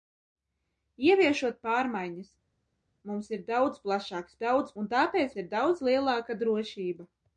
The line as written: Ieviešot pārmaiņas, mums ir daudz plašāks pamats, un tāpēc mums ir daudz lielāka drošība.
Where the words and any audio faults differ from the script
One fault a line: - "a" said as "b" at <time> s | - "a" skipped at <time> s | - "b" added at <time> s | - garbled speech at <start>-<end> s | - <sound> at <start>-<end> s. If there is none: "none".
- "pamats" said as "daudz" at 4.4 s
- "mums" skipped at 5.3 s